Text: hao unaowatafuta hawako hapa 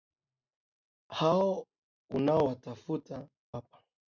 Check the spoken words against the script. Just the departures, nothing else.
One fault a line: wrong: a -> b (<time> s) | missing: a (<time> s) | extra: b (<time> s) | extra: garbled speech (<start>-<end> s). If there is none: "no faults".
missing: hawako (3.3 s)